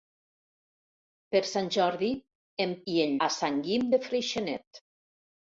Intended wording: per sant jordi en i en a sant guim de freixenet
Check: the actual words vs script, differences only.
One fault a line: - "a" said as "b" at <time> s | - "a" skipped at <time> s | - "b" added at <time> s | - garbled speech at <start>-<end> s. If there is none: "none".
none